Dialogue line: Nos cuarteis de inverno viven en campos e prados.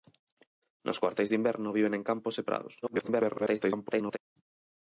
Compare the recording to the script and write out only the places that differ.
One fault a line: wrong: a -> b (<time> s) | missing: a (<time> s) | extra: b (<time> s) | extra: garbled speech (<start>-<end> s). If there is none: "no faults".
extra: garbled speech (2.8-4.2 s)